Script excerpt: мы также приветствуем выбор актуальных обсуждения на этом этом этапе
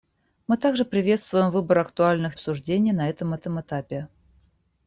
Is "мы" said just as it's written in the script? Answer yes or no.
yes